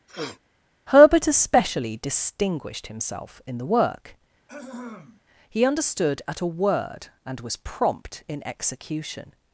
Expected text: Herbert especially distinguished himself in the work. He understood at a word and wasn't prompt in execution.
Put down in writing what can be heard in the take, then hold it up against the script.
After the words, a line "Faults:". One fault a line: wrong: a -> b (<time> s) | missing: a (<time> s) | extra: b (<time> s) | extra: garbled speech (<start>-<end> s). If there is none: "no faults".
Herbert especially distinguished himself in the work. He understood at a word and was prompt in execution.
Faults:
wrong: wasn't -> was (7.4 s)